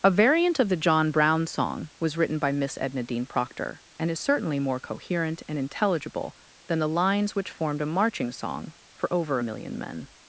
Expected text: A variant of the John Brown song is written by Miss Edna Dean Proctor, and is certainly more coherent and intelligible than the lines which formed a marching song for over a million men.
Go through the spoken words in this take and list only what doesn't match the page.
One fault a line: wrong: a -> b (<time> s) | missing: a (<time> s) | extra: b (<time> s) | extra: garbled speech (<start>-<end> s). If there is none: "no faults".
wrong: is -> was (2.0 s)